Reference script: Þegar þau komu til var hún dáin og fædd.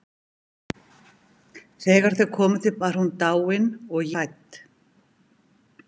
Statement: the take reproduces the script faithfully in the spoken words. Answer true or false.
true